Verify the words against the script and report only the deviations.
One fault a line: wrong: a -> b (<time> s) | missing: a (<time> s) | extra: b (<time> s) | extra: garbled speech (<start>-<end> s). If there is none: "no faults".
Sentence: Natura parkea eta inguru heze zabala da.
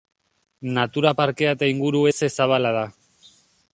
no faults